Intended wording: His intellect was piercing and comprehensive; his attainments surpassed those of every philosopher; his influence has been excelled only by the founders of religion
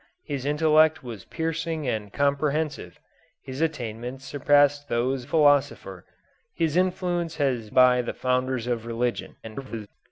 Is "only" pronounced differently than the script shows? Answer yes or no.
yes